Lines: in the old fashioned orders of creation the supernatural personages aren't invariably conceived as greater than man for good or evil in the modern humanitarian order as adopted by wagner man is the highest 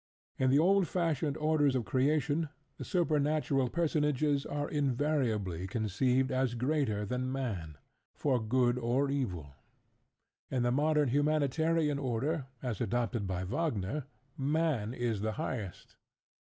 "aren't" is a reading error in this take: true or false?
true